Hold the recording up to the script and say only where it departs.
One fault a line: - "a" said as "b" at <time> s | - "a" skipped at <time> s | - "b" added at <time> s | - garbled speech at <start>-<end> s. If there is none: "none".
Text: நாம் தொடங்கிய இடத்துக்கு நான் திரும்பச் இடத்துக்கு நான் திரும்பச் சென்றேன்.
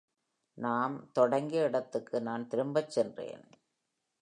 - "இடத்துக்கு நான் திரும்பச்" skipped at 2.9 s